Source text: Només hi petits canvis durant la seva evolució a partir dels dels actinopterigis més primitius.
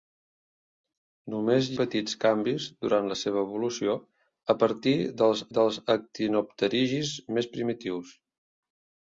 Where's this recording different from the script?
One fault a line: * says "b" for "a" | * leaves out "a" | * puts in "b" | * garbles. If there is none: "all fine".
all fine